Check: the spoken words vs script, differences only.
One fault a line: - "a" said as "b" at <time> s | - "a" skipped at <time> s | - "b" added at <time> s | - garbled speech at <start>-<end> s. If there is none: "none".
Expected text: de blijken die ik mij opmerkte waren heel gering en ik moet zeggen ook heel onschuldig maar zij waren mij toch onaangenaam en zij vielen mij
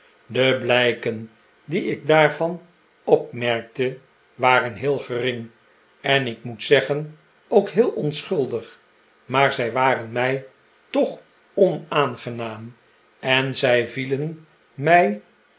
- "mij" said as "daarvan" at 2.1 s